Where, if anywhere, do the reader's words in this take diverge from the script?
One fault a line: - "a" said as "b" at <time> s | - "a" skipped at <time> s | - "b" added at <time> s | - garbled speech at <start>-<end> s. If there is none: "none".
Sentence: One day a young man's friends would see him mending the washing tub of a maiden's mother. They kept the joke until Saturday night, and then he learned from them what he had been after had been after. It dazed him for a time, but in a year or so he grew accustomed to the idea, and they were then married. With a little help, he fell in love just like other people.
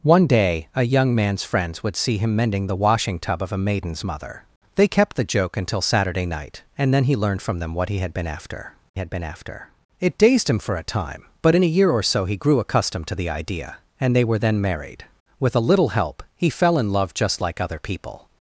none